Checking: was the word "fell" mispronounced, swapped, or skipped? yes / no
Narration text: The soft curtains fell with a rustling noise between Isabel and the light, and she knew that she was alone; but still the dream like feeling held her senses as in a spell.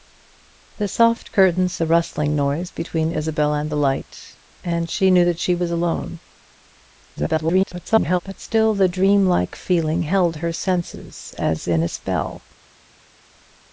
yes